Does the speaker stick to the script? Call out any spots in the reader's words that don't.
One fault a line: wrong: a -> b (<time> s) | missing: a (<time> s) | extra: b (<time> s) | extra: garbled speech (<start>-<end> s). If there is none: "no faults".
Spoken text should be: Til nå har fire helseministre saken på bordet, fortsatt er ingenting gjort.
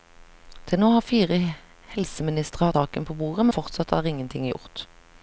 no faults